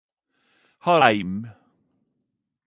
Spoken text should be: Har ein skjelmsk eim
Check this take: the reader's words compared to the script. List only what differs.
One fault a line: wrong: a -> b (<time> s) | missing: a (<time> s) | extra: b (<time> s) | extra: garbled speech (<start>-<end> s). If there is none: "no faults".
missing: ein skjelmsk (1.0 s)